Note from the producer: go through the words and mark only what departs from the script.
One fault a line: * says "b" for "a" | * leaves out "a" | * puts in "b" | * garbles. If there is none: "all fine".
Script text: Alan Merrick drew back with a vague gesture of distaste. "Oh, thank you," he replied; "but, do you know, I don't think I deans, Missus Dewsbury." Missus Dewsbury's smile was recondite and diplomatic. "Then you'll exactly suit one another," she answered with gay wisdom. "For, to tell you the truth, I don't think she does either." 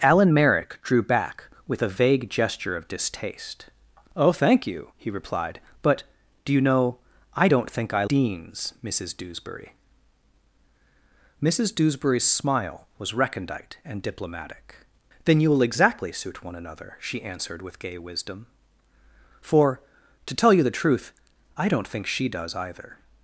all fine